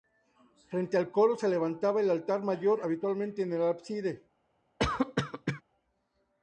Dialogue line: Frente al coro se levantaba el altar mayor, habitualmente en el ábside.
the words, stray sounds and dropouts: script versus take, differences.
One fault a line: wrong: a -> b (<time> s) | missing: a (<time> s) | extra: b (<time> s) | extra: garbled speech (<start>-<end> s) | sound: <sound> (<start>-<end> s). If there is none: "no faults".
sound: cough (4.8-5.6 s)